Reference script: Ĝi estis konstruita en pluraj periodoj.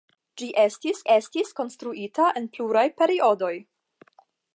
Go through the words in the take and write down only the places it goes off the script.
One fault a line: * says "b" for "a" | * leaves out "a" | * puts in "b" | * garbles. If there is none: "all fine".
* puts in "estis"